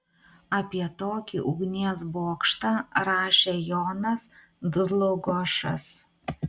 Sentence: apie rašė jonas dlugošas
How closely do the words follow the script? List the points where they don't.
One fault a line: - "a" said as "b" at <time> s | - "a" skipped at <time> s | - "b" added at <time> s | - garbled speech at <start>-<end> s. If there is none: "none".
- "tokį ugnies bokštą" added at 1.0 s